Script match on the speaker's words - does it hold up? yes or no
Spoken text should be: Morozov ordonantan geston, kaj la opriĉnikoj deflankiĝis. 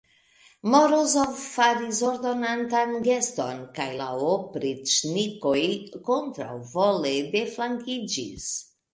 no